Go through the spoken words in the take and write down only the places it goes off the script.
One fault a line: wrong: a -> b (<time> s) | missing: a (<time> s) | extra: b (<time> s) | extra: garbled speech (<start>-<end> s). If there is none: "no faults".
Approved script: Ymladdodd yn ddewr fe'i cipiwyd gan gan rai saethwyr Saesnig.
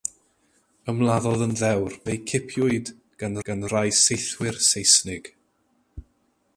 no faults